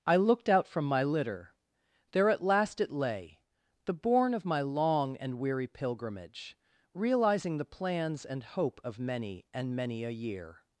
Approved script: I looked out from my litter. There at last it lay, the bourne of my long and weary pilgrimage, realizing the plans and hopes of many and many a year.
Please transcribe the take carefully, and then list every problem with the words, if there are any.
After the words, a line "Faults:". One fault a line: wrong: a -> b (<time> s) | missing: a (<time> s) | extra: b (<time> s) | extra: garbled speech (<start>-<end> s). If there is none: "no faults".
I looked out from my litter. There at last it lay, the bourne of my long and weary pilgrimage, realizing the plans and hope of many and many a year.
Faults:
wrong: hopes -> hope (8.4 s)